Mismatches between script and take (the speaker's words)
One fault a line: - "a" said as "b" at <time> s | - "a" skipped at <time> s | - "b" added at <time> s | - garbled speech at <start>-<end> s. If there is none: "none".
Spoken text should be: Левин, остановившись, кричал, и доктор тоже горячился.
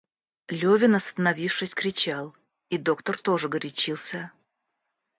none